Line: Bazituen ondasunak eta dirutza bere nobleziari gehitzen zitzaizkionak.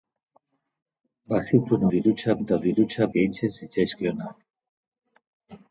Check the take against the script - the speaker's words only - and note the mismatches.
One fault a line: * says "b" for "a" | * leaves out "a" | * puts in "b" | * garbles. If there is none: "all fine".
* says "dirutza" for "ondasunak"
* leaves out "bere nobleziari"